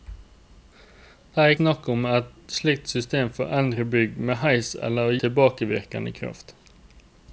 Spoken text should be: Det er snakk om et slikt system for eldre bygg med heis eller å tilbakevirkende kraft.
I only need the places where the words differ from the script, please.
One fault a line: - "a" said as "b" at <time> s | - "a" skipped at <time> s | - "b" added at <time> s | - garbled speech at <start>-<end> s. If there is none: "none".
none